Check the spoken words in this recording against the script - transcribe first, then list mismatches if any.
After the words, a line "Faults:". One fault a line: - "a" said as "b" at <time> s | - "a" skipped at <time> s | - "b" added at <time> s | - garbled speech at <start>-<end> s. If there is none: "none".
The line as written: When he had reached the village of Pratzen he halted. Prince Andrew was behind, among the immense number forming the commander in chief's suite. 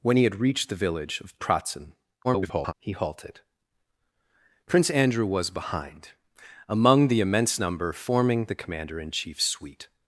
When he had reached the village of Pratzen [garbled] he halted. Prince Andrew was behind, among the immense number forming the commander in chief's suite.
Faults:
- garbled speech at 2.2-2.7 s